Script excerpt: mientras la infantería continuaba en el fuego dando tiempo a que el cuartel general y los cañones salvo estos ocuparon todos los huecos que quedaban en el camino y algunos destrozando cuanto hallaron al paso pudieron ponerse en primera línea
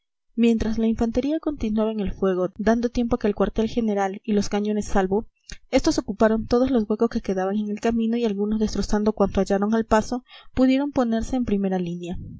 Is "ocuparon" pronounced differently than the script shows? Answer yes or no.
no